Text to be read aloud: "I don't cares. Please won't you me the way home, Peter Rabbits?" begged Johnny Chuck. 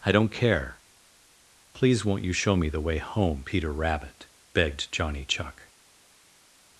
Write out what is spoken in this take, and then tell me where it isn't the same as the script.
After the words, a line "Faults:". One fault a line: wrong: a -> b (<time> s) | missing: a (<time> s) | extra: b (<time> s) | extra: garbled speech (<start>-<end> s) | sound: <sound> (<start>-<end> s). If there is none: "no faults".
"I don't care. Please won't you show me the way home, Peter Rabbit?" begged Johnny Chuck.
Faults:
wrong: cares -> care (0.3 s)
extra: show (2.3 s)
wrong: Rabbits -> Rabbit (3.7 s)